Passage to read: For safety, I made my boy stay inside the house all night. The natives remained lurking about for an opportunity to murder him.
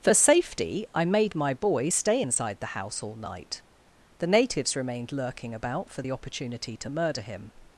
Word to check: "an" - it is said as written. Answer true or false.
false